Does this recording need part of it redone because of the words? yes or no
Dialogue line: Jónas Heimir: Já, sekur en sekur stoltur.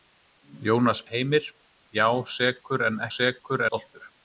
no